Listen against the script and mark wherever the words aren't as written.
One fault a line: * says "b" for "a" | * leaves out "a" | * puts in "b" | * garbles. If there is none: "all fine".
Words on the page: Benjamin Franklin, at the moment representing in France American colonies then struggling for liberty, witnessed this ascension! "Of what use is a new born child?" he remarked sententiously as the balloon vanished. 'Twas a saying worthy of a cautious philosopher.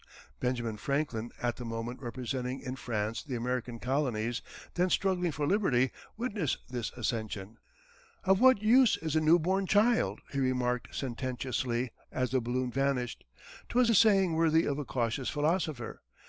* puts in "the"